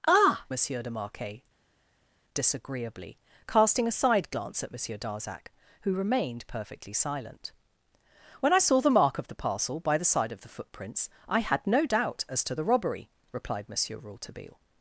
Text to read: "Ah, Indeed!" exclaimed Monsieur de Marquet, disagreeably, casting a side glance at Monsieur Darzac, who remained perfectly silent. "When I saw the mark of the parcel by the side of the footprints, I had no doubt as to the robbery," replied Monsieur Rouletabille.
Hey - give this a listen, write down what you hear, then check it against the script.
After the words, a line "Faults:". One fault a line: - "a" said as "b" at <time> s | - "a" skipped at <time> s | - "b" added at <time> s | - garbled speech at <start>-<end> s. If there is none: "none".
"Ah, Monsieur de Marquet, disagreeably, casting a side glance at Monsieur Darzac, who remained perfectly silent. "When I saw the mark of the parcel by the side of the footprints, I had no doubt as to the robbery," replied Monsieur Rouletabille.
Faults:
- "Indeed exclaimed" skipped at 0.5 s